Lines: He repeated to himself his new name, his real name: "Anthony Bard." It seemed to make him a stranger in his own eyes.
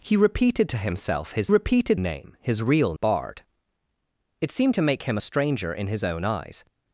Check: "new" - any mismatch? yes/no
yes